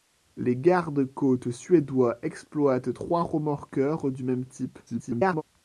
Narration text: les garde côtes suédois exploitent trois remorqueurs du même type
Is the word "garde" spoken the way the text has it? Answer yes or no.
yes